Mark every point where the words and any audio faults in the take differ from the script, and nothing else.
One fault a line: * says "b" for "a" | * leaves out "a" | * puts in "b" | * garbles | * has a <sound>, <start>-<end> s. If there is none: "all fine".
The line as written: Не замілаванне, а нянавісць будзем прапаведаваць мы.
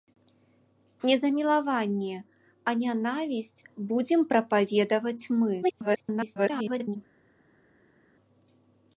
* garbles